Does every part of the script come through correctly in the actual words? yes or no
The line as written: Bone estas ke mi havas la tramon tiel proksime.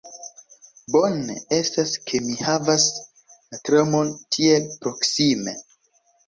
yes